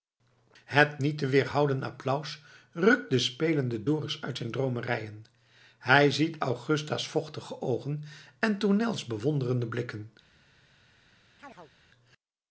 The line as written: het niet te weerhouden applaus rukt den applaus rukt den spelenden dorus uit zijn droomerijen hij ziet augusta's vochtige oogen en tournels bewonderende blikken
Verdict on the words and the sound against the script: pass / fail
fail